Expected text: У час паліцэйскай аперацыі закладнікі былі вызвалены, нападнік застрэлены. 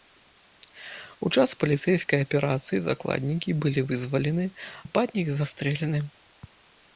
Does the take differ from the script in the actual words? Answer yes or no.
no